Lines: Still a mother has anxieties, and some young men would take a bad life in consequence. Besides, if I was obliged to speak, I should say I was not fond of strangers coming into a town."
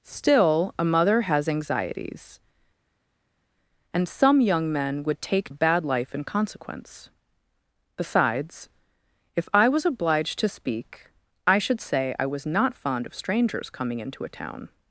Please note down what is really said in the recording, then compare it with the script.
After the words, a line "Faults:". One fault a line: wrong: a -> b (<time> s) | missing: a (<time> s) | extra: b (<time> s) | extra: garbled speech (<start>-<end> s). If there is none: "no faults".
Still a mother has anxieties, and some young men would take a bad life in consequence. Besides, if I was obliged to speak, I should say I was not fond of strangers coming into a town."
Faults:
no faults